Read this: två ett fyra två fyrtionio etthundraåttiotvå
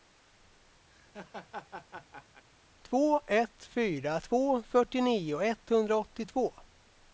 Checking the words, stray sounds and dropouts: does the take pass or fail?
fail